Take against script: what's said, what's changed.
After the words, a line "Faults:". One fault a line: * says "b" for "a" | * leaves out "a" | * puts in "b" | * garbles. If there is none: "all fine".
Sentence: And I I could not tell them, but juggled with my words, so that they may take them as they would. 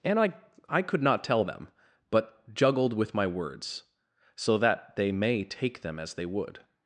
And I I could not tell them, but juggled with my words, so that they may take them as they would.
Faults:
all fine